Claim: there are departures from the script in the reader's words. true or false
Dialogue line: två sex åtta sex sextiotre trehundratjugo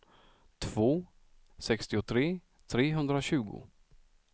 true